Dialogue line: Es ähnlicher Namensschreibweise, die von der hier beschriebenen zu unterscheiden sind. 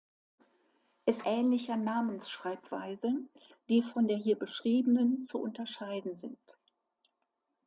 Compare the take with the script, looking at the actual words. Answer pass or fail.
pass